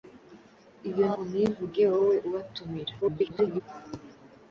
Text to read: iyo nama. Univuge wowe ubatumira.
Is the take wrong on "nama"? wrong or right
wrong